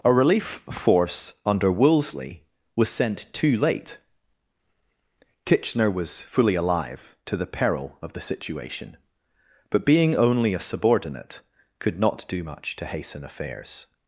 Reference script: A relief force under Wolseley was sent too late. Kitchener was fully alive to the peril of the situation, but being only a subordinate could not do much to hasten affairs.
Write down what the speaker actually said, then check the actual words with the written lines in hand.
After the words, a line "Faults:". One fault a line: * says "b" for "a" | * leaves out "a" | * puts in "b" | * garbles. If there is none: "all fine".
A relief force under Wolseley was sent too late. Kitchener was fully alive to the peril of the situation, but being only a subordinate could not do much to hasten affairs.
Faults:
all fine